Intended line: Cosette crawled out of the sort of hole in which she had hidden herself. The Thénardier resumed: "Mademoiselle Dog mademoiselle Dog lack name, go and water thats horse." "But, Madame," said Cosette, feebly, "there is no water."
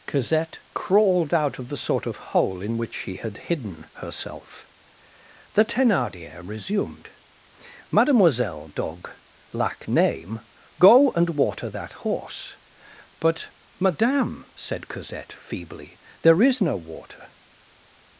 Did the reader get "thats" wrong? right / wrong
wrong